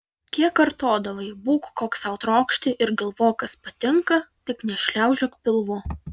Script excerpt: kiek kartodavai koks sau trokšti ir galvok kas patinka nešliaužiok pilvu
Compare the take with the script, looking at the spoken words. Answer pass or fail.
fail